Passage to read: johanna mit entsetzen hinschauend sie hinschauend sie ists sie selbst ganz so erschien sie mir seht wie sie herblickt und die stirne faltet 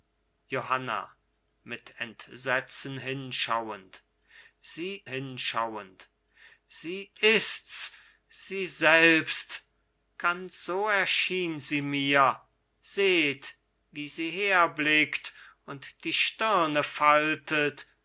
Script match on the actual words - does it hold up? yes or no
yes